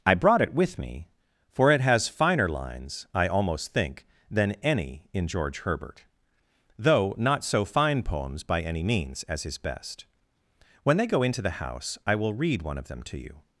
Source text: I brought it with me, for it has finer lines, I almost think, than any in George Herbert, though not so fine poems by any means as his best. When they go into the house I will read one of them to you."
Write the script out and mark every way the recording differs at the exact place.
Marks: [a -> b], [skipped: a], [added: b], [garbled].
I brought it with me, for it has finer lines, I almost think, than any in George Herbert, though not so fine poems by any means as his best. When they go into the house I will read one of them to you."